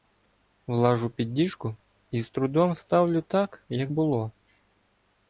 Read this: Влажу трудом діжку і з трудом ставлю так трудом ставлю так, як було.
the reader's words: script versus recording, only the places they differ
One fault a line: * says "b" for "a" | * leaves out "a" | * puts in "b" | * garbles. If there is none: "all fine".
* says "під" for "трудом"
* leaves out "трудом ставлю так"